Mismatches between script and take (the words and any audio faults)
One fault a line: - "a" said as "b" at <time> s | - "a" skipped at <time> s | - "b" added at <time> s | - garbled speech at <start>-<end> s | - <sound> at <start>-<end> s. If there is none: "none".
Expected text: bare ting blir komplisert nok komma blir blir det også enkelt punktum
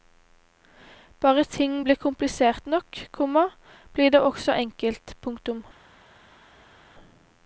- "blir" skipped at 4.1 s